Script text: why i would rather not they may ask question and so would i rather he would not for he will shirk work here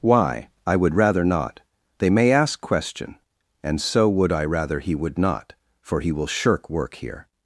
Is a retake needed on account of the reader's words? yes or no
no